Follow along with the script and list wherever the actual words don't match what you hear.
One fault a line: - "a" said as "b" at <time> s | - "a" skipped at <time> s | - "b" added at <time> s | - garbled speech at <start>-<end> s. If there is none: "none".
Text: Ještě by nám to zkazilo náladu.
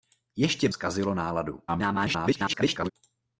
- "by nám to" skipped at 0.7 s
- garbled speech at 1.7-2.9 s